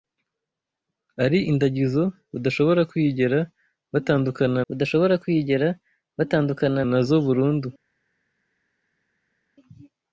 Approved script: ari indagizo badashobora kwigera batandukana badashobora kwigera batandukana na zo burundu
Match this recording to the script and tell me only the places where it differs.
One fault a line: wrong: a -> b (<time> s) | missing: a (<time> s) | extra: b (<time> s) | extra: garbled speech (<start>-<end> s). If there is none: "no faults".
no faults